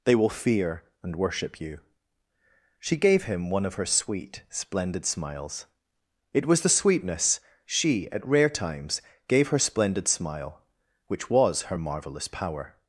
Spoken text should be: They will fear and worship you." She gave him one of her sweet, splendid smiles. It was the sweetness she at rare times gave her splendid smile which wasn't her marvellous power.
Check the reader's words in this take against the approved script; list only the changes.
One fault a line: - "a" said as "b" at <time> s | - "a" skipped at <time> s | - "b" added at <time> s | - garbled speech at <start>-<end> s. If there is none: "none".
- "wasn't" said as "was" at 11.3 s